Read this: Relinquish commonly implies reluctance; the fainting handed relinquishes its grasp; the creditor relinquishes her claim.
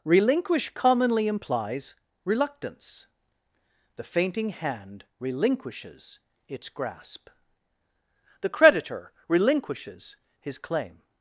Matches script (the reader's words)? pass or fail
fail